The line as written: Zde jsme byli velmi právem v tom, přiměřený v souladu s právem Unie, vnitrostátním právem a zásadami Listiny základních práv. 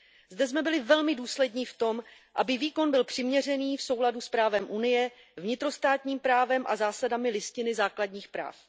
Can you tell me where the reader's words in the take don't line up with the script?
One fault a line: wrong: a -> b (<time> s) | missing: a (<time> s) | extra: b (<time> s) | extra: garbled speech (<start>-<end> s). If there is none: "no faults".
wrong: právem -> důslední (1.2 s)
extra: aby výkon byl (2.4 s)